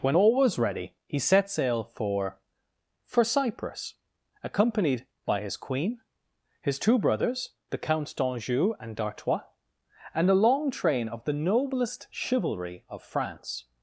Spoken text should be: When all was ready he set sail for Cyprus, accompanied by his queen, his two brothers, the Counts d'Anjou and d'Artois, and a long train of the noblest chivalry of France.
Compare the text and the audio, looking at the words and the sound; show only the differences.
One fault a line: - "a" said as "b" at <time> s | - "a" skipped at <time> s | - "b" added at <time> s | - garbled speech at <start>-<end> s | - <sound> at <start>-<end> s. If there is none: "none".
- "for" added at 3.0 s